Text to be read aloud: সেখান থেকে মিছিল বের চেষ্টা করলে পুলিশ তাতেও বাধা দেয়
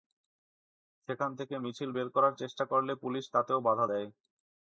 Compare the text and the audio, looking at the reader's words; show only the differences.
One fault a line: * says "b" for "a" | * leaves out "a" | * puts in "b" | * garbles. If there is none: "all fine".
* puts in "করার"